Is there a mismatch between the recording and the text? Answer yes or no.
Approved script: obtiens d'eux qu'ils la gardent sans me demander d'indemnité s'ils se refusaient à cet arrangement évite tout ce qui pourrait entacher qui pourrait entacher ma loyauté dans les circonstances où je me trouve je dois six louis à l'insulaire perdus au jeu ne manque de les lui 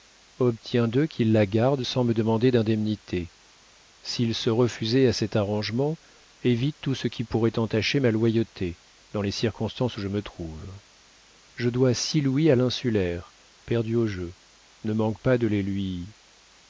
yes